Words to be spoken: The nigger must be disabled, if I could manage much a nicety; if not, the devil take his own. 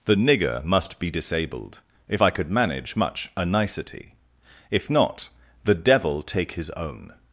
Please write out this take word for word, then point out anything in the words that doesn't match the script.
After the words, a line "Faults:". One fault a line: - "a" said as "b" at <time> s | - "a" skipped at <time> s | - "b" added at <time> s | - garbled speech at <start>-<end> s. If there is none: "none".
The nigger must be disabled, if I could manage much a nicety; if not, the devil take his own.
Faults:
none